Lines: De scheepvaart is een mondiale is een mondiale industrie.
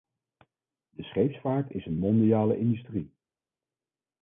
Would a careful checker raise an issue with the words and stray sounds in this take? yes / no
yes